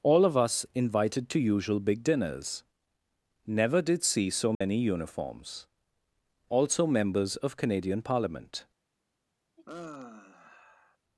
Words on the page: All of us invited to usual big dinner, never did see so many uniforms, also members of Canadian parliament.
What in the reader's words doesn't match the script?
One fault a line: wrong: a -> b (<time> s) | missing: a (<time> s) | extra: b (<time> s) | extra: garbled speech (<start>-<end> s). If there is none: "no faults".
wrong: dinner -> dinners (2.0 s)